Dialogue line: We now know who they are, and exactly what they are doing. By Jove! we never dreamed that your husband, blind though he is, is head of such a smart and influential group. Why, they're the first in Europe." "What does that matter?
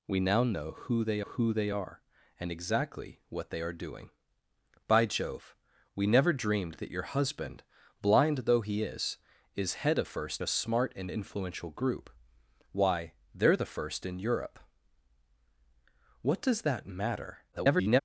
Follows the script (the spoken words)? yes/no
no